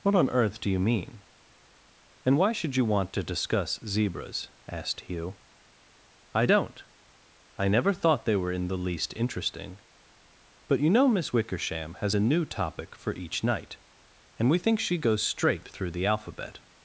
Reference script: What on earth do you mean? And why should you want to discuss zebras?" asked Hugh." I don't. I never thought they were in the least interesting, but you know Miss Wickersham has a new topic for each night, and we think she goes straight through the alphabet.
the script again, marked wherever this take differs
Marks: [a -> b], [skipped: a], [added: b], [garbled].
What on earth do you mean? And why should you want to discuss zebras?" asked Hugh." I don't. I never thought they were in the least interesting, but you know Miss Wickersham has a new topic for each night, and we think she goes straight through the alphabet.